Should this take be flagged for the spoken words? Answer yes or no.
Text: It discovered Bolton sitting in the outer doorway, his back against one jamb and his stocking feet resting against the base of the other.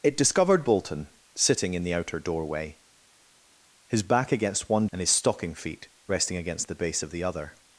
yes